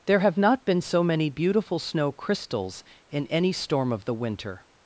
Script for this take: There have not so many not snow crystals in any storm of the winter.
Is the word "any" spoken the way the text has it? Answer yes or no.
yes